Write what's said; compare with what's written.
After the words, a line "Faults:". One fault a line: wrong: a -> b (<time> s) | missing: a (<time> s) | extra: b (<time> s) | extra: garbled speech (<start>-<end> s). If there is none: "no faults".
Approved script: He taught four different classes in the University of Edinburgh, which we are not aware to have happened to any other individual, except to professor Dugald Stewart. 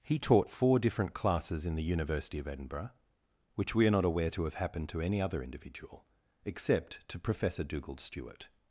He taught four different classes in the University of Edinburgh, which we are not aware to have happened to any other individual, except to professor Dugald Stewart.
Faults:
no faults